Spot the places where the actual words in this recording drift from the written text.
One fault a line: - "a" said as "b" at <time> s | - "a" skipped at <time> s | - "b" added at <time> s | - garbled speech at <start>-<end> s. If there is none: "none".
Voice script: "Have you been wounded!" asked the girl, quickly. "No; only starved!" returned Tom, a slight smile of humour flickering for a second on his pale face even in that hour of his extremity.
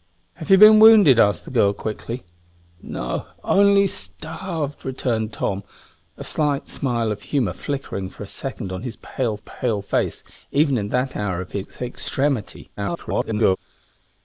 - "pale" added at 9.4 s
- garbled speech at 12.8-13.6 s